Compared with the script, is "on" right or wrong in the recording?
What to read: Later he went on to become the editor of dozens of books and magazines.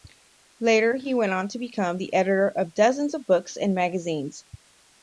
right